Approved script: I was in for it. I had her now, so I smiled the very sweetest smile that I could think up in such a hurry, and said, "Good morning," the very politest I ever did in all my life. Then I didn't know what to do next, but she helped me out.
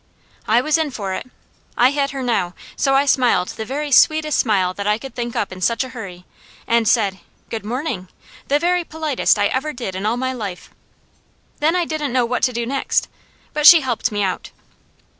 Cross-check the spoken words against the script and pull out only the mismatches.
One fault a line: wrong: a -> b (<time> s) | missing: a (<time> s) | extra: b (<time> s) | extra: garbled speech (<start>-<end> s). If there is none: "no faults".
no faults